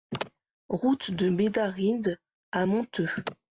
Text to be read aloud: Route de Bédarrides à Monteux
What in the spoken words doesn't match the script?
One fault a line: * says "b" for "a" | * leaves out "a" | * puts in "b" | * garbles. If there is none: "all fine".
all fine